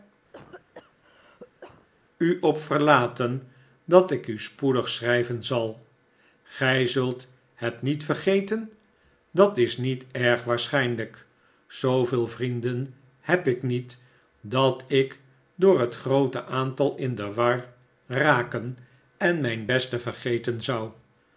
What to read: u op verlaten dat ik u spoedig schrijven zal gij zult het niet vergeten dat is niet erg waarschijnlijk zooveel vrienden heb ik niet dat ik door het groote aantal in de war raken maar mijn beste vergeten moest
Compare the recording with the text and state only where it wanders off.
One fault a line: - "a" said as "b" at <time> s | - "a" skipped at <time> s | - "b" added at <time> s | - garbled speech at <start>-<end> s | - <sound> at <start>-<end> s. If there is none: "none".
- cough at 0.3-1.9 s
- "maar" said as "en" at 19.2 s
- "moest" said as "zou" at 20.6 s